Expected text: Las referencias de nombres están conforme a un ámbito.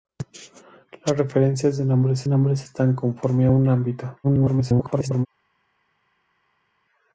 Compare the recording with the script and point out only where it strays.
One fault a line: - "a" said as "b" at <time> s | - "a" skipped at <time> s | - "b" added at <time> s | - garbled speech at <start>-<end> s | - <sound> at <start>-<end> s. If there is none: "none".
- "nombres" added at 2.3 s
- garbled speech at 4.2-5.3 s